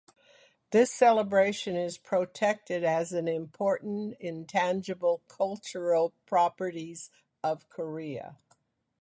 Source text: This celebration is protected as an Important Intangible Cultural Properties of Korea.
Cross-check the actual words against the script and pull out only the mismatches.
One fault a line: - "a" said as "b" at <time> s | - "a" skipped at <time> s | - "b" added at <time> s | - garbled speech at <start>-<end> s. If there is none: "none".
none